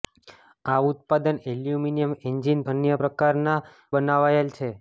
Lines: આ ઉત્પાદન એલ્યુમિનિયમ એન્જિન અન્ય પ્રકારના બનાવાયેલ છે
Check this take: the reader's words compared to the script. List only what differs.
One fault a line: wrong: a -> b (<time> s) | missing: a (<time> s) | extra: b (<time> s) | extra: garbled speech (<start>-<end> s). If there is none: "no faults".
no faults